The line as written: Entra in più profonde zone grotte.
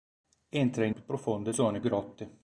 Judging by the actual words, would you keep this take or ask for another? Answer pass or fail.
pass